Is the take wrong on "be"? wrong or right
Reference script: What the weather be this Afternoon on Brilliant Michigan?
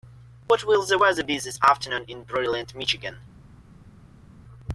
right